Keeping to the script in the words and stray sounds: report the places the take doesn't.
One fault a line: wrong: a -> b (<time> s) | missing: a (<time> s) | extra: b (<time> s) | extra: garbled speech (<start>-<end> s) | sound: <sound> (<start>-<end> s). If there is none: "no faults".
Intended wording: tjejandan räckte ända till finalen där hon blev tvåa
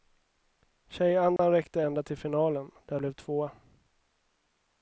sound: dropout (1.4-1.4 s)
missing: hon (3.0 s)